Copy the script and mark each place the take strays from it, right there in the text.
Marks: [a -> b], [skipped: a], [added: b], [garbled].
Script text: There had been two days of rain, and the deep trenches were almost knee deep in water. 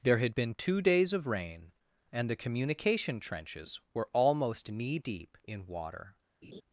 There had been two days of rain, and the [deep -> communication] trenches were almost knee deep in water.